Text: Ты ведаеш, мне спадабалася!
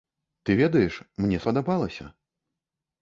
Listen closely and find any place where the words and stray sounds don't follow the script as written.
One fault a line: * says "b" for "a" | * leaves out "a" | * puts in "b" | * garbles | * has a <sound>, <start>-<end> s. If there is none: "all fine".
all fine